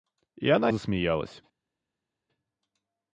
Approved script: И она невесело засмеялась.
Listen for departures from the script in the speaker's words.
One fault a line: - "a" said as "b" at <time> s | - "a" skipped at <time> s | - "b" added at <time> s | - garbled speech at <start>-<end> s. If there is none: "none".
- "невесело" skipped at 0.7 s